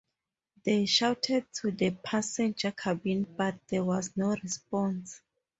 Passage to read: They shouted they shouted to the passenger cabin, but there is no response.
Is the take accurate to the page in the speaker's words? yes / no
no